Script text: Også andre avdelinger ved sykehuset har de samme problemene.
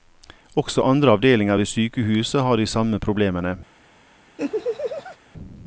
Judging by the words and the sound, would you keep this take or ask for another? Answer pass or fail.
fail